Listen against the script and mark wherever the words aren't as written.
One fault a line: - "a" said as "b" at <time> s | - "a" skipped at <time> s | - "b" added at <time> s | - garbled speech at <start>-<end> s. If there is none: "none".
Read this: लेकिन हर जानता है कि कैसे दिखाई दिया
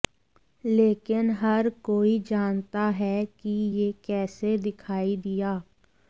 - "कोई" added at 1.8 s
- "यह" added at 3.8 s